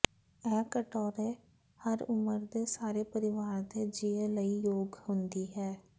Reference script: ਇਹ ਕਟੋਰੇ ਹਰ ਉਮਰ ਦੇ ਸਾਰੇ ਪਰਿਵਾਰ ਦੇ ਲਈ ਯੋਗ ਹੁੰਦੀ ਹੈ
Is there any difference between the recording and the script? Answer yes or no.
yes